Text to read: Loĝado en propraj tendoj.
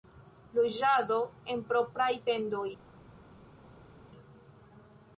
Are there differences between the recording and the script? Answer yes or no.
no